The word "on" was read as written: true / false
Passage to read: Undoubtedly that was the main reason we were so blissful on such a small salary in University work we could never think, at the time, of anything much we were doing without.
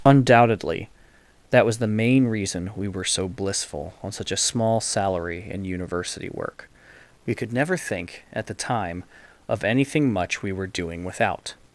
true